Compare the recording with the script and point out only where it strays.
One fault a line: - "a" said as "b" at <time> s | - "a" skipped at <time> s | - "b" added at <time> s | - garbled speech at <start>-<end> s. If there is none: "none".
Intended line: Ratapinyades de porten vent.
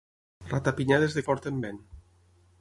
none